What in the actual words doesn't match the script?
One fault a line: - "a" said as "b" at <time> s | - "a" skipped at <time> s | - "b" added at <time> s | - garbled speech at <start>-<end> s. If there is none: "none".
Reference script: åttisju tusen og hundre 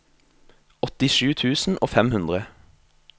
- "fem" added at 1.9 s